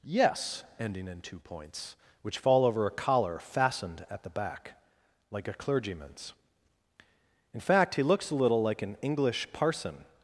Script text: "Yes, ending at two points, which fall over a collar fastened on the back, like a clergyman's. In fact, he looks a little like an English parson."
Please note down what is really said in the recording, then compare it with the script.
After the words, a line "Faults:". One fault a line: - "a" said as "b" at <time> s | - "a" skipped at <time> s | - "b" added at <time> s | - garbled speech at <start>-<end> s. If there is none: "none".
"Yes, ending in two points, which fall over a collar fastened at the back, like a clergyman's. In fact, he looks a little like an English parson."
Faults:
- "at" said as "in" at 1.1 s
- "on" said as "at" at 4.1 s